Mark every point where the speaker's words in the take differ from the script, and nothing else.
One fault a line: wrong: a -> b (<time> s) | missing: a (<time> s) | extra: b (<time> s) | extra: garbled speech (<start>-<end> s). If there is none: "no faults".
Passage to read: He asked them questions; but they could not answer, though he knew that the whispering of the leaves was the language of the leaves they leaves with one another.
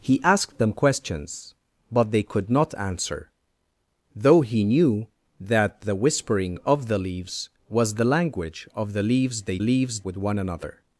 no faults